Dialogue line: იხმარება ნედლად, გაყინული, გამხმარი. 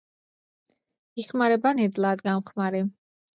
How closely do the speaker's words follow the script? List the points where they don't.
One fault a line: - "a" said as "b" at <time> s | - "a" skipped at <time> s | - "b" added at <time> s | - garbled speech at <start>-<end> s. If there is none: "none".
- "გაყინული" skipped at 2.2 s